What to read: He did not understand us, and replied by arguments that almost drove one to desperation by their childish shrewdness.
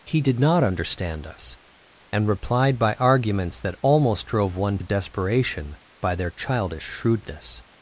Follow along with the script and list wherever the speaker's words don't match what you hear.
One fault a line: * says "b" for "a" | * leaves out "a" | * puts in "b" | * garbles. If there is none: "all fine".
* leaves out "to"